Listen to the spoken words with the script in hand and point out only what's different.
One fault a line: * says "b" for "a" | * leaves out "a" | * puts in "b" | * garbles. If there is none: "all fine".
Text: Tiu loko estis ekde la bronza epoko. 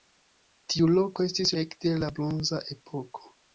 all fine